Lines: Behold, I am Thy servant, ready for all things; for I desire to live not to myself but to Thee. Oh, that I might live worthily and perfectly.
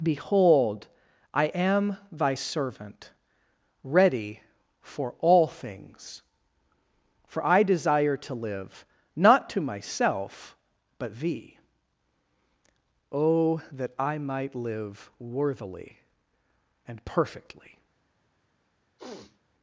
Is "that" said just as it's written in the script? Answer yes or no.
yes